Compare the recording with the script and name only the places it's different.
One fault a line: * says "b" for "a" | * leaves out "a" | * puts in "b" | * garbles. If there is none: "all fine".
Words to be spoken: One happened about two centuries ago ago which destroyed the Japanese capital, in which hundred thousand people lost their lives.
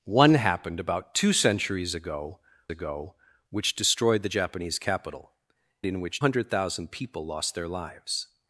all fine